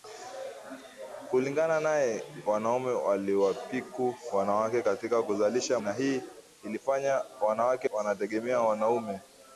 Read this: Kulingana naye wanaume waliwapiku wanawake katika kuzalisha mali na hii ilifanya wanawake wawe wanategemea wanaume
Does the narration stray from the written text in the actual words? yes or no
yes